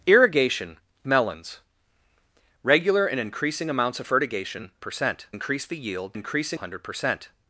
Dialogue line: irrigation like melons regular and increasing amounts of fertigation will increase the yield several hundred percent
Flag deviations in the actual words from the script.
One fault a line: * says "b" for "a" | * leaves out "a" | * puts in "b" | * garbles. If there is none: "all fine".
* leaves out "like"
* says "percent" for "will"
* says "increasing" for "several"